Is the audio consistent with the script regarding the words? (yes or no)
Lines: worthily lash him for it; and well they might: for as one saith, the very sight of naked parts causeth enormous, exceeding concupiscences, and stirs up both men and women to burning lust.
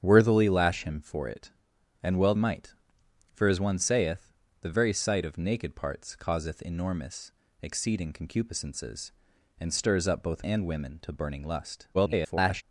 no